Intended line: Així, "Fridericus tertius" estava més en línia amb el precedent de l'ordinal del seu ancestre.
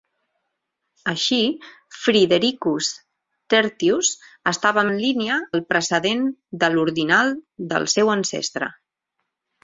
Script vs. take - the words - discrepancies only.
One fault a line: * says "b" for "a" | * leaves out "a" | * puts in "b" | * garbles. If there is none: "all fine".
* leaves out "més"
* leaves out "amb"